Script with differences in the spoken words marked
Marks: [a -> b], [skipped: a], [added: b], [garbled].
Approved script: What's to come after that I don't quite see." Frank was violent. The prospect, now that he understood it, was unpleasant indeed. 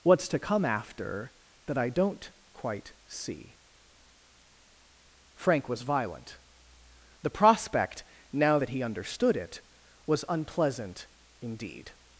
What's to come after that I don't quite see." Frank was violent. The prospect, now that he understood it, was unpleasant indeed.